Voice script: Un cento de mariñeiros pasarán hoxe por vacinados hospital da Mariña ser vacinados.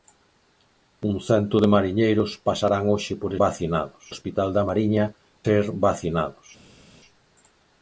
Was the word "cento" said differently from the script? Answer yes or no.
no